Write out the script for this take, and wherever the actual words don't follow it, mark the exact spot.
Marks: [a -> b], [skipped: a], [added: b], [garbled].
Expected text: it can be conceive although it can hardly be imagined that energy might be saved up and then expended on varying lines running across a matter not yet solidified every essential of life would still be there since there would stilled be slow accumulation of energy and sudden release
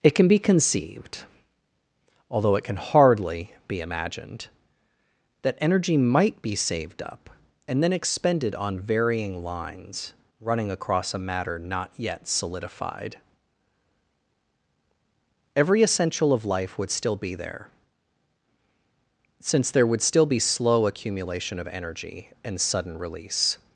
it can be [conceive -> conceived] although it can hardly be imagined that energy might be saved up and then expended on varying lines running across a matter not yet solidified every essential of life would still be there since there would [stilled -> still] be slow accumulation of energy and sudden release